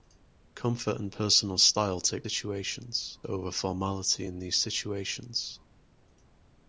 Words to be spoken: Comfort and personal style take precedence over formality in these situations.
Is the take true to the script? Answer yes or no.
no